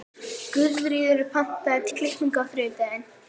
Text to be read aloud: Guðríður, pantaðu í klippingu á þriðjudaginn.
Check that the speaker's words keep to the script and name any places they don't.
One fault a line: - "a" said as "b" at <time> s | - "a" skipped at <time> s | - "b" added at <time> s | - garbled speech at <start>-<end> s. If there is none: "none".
none